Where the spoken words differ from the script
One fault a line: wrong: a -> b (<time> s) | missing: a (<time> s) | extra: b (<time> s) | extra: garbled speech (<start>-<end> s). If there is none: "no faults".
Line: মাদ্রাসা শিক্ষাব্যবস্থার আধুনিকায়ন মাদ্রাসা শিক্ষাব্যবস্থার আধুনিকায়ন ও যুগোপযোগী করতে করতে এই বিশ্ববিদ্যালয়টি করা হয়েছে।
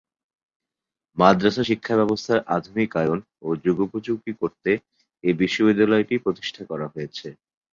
missing: মাদ্রাসা শিক্ষাব্যবস্থার আধুনিকায়ন (3.2 s)
missing: করতে (4.7 s)
extra: প্রতিষ্ঠা (6.2 s)